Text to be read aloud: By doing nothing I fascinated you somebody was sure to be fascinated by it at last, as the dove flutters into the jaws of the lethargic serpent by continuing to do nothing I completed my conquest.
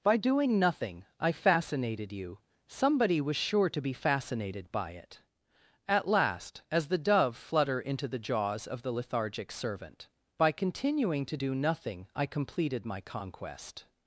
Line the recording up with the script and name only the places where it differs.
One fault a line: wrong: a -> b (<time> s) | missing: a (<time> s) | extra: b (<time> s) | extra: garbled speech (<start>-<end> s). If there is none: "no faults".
wrong: flutters -> flutter (7.4 s)
wrong: serpent -> servant (9.5 s)